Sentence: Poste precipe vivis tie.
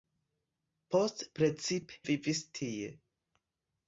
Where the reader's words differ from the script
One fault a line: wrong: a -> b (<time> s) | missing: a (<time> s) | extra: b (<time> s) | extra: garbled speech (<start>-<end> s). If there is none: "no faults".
no faults